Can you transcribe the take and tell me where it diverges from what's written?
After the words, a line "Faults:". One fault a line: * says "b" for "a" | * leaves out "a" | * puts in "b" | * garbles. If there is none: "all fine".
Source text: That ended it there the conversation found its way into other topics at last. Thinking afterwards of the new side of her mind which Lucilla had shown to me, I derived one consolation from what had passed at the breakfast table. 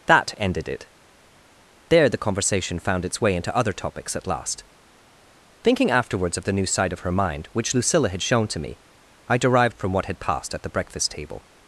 That ended it there the conversation found its way into other topics at last. Thinking afterwards of the new side of her mind which Lucilla had shown to me, I derived from what had passed at the breakfast table.
Faults:
* leaves out "one consolation"